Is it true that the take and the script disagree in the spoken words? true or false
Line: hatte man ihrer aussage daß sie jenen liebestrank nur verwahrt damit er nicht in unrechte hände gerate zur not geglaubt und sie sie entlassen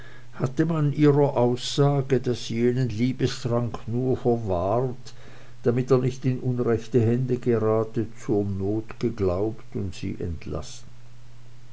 true